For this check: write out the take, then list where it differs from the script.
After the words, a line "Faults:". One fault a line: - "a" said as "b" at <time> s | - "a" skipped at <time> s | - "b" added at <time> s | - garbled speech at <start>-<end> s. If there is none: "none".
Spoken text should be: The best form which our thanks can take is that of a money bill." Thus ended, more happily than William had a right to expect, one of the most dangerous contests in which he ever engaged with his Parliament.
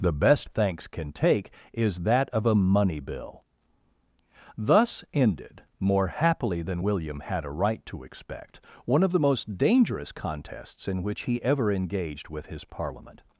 The best thanks can take is that of a money bill." Thus ended, more happily than William had a right to expect, one of the most dangerous contests in which he ever engaged with his Parliament.
Faults:
- "form which our" skipped at 0.5 s